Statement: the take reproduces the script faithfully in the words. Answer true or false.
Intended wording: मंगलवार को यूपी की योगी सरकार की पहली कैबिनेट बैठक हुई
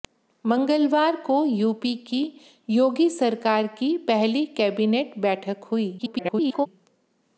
false